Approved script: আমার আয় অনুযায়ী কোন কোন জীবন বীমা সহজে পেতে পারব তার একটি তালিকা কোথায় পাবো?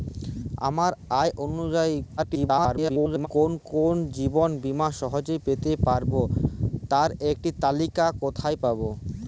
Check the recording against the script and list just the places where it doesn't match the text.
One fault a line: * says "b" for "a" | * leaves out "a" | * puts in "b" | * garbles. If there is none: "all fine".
* garbles